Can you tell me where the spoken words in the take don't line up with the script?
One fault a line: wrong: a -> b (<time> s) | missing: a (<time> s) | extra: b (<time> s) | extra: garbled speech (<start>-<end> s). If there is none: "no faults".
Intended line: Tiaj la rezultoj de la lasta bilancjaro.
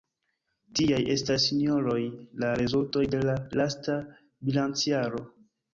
extra: estas sinjoroj (1.1 s)